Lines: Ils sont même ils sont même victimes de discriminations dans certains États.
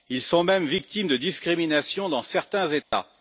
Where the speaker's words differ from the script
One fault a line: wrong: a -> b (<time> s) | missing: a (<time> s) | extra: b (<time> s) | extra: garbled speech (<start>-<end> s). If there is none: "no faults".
missing: ils sont même (0.7 s)